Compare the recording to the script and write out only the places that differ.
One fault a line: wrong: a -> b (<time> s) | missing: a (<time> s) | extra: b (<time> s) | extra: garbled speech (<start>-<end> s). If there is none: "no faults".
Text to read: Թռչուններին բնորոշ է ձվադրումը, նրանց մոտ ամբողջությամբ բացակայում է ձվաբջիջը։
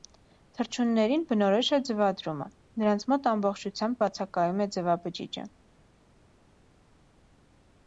no faults